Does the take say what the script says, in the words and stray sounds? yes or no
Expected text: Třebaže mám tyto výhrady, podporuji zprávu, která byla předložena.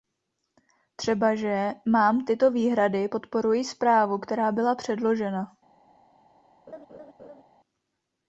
no